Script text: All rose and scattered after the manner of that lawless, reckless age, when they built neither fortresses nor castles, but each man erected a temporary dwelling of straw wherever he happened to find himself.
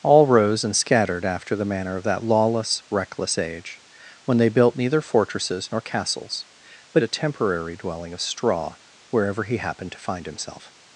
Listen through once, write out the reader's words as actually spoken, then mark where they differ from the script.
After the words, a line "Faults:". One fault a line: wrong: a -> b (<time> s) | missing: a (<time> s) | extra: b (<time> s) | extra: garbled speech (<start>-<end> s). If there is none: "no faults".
All rose and scattered after the manner of that lawless, reckless age, when they built neither fortresses nor castles, but a temporary dwelling of straw wherever he happened to find himself.
Faults:
missing: each man erected (7.0 s)